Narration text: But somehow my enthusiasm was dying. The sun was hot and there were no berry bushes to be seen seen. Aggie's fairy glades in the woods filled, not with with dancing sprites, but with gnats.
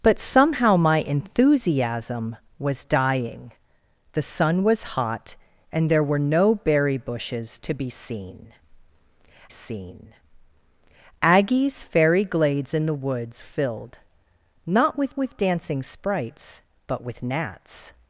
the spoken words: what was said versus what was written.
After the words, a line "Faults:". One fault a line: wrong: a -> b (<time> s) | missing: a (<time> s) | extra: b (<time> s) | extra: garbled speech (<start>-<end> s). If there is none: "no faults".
But somehow my enthusiasm was dying. The sun was hot and there were no berry bushes to be seen seen. Aggie's fairy glades in the woods filled, not with with dancing sprites, but with gnats.
Faults:
no faults